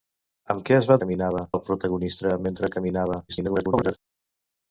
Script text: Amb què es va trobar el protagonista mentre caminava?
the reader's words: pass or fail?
fail